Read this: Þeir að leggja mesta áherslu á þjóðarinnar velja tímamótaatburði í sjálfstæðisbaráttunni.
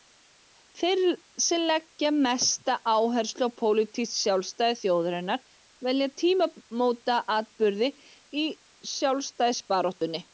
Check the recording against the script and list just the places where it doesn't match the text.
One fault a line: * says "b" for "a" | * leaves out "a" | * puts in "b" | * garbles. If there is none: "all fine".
* says "sem" for "að"
* puts in "pólitískt sjálfstæði"